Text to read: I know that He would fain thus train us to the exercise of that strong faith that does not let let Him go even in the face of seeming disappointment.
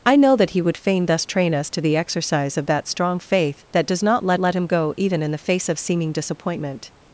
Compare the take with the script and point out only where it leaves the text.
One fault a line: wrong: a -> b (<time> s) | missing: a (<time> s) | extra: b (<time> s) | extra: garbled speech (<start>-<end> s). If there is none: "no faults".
no faults